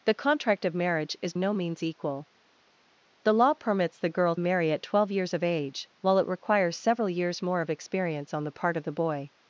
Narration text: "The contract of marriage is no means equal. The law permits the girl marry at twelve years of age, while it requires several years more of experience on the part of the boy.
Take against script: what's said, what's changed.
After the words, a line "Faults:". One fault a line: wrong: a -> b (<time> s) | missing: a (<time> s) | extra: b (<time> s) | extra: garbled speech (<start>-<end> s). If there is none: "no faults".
"The contract of marriage is no means equal. The law permits the girl marry at twelve years of age, while it requires several years more of experience on the part of the boy.
Faults:
no faults